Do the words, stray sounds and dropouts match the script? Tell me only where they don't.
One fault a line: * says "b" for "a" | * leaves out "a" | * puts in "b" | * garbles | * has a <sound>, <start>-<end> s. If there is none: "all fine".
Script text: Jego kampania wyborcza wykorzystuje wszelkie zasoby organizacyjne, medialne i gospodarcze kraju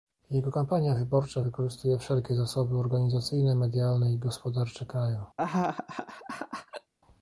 * has a laugh, 5.4-6.9 s